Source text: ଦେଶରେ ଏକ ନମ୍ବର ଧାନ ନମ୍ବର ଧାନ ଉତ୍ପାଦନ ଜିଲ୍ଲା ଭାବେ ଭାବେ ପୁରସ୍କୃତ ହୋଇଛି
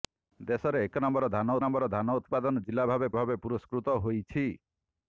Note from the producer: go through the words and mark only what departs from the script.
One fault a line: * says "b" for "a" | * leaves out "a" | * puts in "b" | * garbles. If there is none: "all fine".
all fine